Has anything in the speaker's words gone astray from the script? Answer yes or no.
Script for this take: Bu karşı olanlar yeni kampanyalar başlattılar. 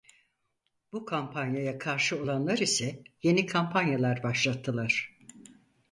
yes